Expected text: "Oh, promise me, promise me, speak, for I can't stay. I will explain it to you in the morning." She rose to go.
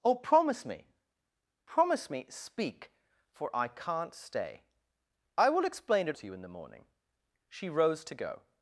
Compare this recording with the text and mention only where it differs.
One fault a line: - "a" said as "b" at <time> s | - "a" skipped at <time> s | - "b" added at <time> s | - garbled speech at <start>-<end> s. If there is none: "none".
none